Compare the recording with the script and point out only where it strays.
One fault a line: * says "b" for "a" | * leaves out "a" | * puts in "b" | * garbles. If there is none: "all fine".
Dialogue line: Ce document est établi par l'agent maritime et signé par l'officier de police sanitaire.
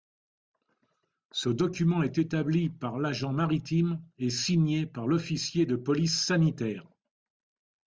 all fine